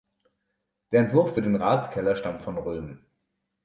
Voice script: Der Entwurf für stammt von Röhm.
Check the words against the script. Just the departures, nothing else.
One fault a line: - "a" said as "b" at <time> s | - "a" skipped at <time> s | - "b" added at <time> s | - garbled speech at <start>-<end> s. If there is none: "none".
- "den Ratskeller" added at 1.4 s